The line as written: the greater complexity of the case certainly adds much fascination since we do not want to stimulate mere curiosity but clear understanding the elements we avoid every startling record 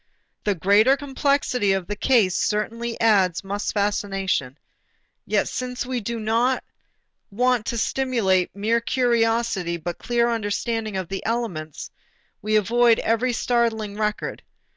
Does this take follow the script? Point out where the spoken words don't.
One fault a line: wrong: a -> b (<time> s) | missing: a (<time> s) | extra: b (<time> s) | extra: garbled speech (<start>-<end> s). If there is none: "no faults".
extra: yet (5.2 s)
extra: of (10.9 s)